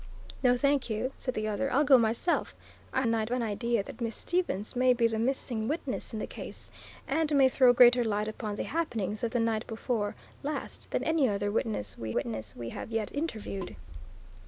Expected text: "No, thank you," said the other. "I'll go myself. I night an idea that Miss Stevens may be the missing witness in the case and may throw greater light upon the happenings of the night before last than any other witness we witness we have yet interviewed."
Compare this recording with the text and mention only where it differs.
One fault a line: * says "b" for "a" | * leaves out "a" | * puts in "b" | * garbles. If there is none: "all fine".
all fine